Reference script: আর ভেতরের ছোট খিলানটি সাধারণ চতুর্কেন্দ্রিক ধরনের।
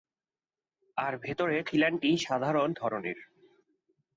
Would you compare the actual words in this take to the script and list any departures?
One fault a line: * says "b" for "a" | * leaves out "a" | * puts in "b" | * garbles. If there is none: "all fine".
* leaves out "ছোট"
* leaves out "চতুর্কেন্দ্রিক"